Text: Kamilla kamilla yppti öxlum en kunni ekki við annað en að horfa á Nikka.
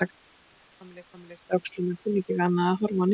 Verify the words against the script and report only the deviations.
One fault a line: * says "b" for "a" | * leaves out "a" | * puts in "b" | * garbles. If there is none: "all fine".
all fine